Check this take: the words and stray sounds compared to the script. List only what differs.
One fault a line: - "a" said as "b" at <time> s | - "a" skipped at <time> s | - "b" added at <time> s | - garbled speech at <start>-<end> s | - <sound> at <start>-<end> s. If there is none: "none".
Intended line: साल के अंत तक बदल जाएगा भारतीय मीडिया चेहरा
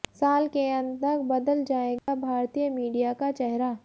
- dropout at 2.0-2.1 s
- "का" added at 3.1 s